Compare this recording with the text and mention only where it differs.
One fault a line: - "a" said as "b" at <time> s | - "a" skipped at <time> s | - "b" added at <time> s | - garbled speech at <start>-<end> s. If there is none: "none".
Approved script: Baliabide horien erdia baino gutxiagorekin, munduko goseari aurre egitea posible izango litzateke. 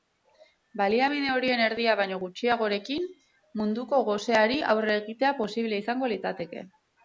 none